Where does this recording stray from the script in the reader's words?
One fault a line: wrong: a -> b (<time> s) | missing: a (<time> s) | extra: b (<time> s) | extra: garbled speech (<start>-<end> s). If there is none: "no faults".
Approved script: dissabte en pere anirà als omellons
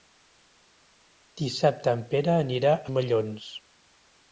missing: als (2.7 s)